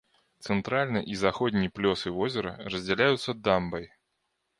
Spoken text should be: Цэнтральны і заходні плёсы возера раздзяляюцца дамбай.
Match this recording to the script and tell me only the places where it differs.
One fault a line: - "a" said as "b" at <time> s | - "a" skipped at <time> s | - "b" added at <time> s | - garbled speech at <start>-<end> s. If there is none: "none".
none